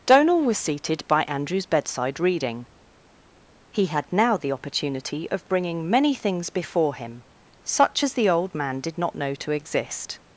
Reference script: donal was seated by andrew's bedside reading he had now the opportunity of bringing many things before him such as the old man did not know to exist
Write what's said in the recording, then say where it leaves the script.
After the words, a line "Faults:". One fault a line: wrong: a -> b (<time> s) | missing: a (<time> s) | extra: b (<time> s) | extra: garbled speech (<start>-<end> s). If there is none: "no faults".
donal was seated by andrew's bedside reading he had now the opportunity of bringing many things before him such as the old man did not know to exist
Faults:
no faults